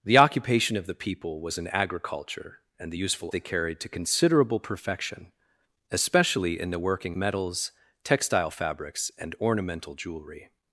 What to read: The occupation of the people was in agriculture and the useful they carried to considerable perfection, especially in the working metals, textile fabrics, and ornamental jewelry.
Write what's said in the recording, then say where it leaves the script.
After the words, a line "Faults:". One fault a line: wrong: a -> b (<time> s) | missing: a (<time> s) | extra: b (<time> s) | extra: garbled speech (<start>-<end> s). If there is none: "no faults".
The occupation of the people was in agriculture and the useful they carried to considerable perfection, especially in the working metals, textile fabrics, and ornamental jewelry.
Faults:
no faults